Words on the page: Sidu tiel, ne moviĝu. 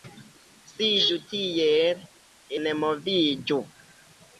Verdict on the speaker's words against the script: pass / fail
pass